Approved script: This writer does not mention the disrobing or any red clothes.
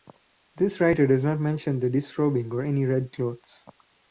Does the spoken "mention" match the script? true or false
true